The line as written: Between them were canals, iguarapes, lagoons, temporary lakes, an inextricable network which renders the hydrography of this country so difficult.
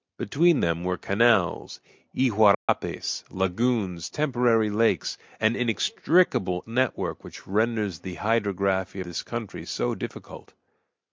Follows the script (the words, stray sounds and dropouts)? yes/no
no